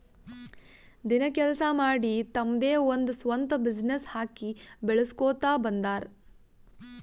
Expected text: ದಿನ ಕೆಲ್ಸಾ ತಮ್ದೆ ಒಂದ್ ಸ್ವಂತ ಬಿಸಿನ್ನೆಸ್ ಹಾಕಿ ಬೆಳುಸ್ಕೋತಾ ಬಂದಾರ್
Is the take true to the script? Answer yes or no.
no